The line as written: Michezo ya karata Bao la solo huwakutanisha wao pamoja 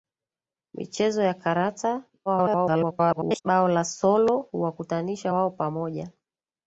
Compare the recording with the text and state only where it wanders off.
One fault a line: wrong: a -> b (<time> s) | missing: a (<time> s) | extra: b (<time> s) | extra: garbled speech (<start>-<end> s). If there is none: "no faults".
extra: garbled speech (2.3-3.4 s)